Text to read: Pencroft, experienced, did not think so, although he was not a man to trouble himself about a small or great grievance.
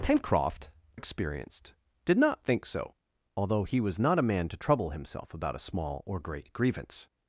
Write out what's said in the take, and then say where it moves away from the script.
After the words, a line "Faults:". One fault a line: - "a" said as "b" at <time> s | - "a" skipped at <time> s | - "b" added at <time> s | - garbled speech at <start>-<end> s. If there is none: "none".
Pencroft, experienced, did not think so, although he was not a man to trouble himself about a small or great grievance.
Faults:
none